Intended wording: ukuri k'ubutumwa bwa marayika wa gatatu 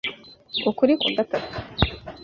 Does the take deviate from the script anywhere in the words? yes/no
yes